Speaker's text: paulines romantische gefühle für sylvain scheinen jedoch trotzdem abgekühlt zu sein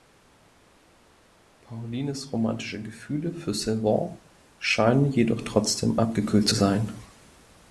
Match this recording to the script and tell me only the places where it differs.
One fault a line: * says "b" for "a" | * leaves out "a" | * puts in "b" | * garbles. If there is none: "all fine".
all fine